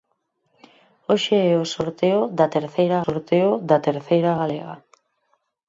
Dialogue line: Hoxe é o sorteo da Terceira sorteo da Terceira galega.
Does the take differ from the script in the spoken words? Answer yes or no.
no